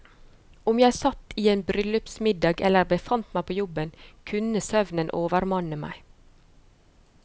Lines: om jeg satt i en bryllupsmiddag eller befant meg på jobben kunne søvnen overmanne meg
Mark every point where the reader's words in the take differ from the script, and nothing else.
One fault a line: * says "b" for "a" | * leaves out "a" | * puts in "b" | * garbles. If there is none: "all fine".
all fine